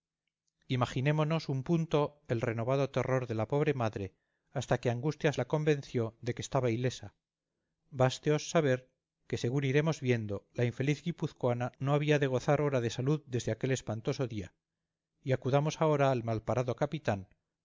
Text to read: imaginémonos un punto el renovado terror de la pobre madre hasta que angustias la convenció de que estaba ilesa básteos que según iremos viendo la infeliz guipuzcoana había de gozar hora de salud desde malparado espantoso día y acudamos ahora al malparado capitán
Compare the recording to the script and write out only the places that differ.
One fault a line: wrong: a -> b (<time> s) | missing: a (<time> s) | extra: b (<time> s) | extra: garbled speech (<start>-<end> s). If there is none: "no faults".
extra: saber (8.5 s)
extra: no (11.8 s)
wrong: malparado -> aquel (13.5 s)